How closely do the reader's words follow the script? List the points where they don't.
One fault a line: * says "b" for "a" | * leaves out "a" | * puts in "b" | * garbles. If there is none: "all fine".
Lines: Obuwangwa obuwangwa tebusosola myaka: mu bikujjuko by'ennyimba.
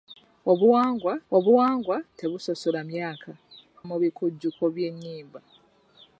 all fine